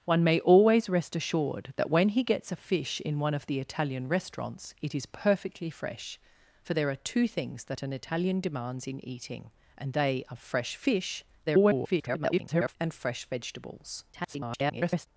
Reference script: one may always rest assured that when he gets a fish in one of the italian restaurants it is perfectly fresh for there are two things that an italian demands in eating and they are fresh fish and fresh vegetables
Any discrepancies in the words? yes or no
yes